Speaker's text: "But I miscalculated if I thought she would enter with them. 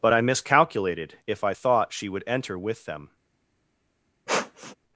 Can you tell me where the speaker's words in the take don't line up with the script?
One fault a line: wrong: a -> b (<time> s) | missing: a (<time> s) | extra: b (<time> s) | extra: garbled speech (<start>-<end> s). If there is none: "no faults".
no faults